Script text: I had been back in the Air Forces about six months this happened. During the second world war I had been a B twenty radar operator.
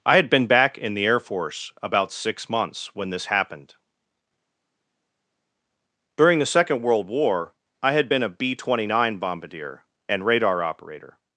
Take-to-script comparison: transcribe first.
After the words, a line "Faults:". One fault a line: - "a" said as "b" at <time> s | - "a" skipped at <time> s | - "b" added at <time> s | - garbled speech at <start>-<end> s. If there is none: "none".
I had been back in the Air Force about six months when this happened. During the second world war I had been a B twenty nine bombardier and radar operator.
Faults:
- "Forces" said as "Force" at 1.2 s
- "when" added at 3.0 s
- "nine bombardier and" added at 8.9 s